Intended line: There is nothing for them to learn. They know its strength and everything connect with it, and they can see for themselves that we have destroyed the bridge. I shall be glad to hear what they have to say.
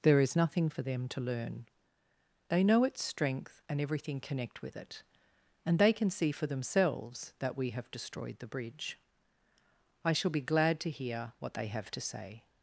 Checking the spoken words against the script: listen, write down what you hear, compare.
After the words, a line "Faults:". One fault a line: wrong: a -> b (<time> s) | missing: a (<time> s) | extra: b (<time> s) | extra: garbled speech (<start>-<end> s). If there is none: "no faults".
There is nothing for them to learn. They know its strength and everything connect with it, and they can see for themselves that we have destroyed the bridge. I shall be glad to hear what they have to say.
Faults:
no faults